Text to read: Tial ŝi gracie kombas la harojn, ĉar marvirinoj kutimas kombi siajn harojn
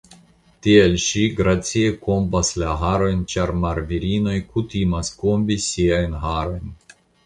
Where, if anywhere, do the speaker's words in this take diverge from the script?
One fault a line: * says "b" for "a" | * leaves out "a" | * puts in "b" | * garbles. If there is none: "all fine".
all fine